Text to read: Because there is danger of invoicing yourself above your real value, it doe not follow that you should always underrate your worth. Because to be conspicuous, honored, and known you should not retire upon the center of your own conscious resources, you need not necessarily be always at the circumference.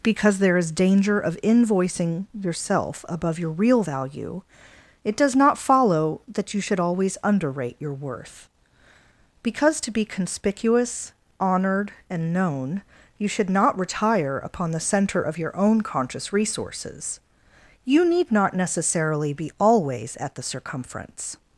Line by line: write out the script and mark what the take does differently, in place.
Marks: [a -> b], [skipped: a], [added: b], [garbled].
Because there is danger of invoicing yourself above your real value, it [doe -> does] not follow that you should always underrate your worth. Because to be conspicuous, honored, and known you should not retire upon the center of your own conscious resources, you need not necessarily be always at the circumference.